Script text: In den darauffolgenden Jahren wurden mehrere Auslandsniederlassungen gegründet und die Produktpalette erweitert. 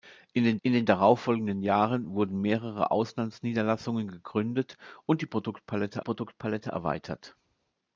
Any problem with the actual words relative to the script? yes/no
yes